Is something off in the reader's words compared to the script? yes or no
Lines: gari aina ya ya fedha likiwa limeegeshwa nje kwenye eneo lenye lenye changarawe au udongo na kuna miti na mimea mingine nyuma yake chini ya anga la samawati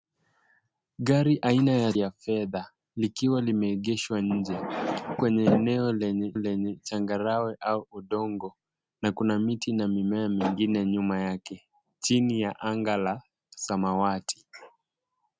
no